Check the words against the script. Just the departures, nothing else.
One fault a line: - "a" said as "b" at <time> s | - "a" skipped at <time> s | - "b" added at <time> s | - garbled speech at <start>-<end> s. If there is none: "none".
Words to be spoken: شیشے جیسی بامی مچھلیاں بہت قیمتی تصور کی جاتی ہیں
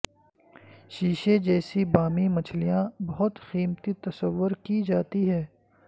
none